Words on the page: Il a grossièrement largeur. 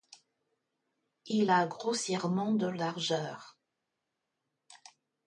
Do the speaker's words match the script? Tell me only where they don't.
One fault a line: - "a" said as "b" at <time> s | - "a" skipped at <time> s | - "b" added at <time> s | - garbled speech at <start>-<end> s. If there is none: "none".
- "de" added at 2.5 s